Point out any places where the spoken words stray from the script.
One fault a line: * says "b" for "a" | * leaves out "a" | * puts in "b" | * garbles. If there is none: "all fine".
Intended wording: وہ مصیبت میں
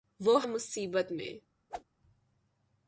all fine